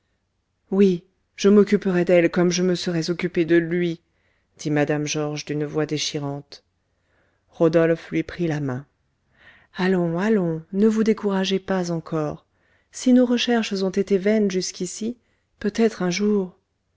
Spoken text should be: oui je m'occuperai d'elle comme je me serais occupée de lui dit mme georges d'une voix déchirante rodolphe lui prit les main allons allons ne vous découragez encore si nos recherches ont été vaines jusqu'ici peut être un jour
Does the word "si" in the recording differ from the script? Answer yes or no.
no